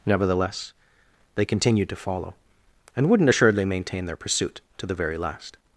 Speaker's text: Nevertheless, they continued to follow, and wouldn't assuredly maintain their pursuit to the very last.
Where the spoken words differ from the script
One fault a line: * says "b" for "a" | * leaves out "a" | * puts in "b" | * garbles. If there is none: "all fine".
all fine